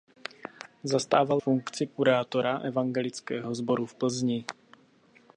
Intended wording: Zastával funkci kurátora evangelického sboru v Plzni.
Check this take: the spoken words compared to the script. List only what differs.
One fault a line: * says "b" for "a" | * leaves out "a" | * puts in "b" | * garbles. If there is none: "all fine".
all fine